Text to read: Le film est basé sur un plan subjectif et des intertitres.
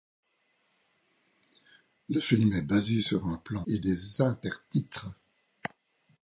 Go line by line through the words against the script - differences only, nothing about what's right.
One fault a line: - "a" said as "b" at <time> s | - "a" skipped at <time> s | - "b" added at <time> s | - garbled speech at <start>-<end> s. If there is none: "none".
- "subjectif" skipped at 3.7 s